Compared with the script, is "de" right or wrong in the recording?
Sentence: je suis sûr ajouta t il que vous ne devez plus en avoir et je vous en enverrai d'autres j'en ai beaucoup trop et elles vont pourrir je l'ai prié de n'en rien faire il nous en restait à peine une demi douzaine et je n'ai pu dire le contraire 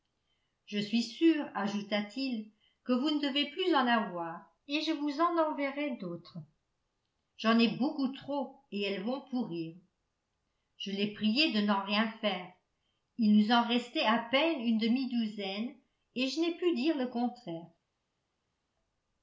right